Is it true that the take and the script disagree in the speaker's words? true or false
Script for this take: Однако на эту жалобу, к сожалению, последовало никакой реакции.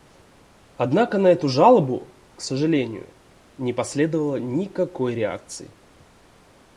true